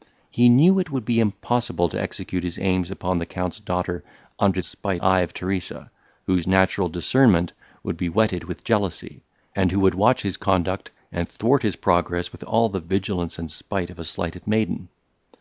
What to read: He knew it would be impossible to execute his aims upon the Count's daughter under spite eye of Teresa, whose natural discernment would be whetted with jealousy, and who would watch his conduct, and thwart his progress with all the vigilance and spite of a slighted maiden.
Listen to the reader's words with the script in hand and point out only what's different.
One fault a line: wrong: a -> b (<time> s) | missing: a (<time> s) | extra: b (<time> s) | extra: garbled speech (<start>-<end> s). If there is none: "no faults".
no faults